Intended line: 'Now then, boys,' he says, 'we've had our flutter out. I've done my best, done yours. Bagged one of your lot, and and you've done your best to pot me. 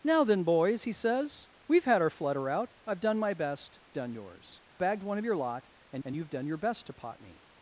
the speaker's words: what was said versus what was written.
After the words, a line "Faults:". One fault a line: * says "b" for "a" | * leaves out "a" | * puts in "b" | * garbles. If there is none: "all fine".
'Now then, boys,' he says, 'we've had our flutter out. I've done my best, done yours. Bagged one of your lot, and and you've done your best to pot me.
Faults:
all fine